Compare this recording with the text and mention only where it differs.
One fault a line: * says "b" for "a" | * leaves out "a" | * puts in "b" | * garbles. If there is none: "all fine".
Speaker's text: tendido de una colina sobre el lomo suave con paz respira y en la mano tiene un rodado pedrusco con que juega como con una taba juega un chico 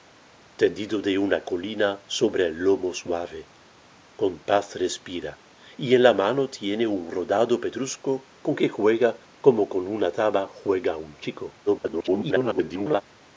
* garbles